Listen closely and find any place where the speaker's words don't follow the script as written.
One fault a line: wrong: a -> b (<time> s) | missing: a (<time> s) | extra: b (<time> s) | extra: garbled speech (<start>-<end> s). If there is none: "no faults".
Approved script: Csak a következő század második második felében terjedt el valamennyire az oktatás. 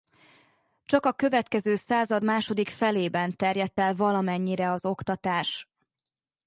missing: második (2.7 s)